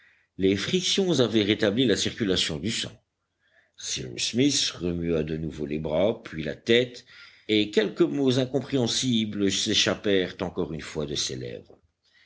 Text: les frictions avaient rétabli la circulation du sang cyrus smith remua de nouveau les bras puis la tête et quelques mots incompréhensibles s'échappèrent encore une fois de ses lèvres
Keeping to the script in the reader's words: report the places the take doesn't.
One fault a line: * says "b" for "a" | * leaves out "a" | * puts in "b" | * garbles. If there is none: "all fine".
all fine